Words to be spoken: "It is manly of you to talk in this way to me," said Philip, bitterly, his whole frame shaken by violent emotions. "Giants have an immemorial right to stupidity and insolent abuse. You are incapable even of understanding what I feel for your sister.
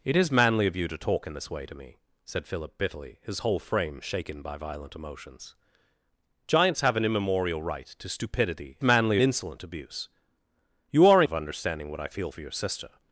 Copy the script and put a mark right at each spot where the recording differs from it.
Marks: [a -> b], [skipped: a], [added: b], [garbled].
"It is manly of you to talk in this way to me," said Philip, bitterly, his whole frame shaken by violent emotions. "Giants have an immemorial right to stupidity [and -> manly] insolent abuse. You are [skipped: incapable even] of understanding what I feel for your sister.